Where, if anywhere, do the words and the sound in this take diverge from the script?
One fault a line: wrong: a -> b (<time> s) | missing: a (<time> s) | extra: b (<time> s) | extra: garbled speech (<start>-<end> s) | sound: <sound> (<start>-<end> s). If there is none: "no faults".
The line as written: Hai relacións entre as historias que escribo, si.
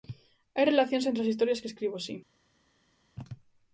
no faults